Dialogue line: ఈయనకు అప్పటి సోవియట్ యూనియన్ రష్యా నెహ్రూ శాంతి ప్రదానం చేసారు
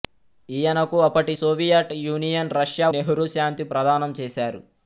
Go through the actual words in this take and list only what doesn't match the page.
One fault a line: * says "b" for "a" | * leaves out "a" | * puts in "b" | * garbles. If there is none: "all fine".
all fine